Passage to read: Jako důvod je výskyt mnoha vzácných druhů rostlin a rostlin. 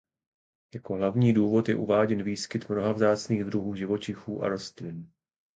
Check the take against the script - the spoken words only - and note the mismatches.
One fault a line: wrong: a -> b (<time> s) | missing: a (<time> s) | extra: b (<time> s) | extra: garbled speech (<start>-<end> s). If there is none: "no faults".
extra: hlavní (0.9 s)
extra: uváděn (1.8 s)
wrong: rostlin -> živočichů (3.8 s)